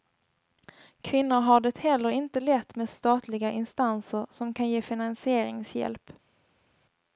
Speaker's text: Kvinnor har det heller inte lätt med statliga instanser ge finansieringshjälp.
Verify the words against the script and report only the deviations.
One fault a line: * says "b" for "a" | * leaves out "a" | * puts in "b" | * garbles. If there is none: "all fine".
* puts in "som kan"